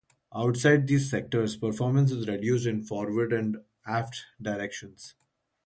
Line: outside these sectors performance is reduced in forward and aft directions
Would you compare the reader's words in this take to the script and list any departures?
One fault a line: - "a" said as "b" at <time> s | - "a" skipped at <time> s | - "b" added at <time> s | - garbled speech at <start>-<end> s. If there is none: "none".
none